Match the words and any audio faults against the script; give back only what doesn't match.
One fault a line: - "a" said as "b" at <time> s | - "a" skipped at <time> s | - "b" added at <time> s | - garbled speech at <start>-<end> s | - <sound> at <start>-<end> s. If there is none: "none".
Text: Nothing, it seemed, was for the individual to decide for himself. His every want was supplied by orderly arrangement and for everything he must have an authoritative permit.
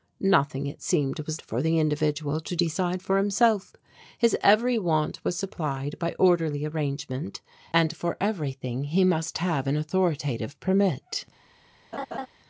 - laugh at 11.9-12.3 s